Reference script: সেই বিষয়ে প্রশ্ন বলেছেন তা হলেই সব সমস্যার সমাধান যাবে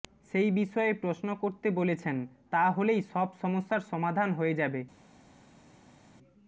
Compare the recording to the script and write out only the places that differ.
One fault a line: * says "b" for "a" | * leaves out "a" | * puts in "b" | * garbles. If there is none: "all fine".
* puts in "করতে"
* puts in "হয়ে"